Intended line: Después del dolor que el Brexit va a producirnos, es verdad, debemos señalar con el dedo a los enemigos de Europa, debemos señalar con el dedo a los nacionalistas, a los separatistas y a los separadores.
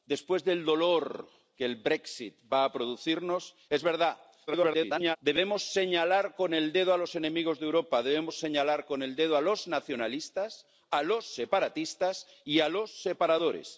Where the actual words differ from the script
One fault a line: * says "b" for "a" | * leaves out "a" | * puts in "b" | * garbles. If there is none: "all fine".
* garbles